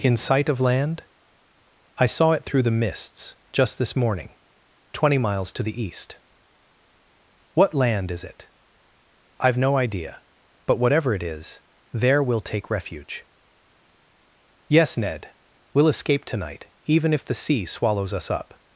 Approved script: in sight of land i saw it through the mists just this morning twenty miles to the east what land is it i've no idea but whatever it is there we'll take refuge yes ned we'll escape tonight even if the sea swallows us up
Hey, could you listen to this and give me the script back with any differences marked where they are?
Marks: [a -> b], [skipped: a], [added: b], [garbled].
in sight of land i saw it through the mists just this morning twenty miles to the east what land is it i've no idea but whatever it is there we'll take refuge yes ned we'll escape tonight even if the sea swallows us up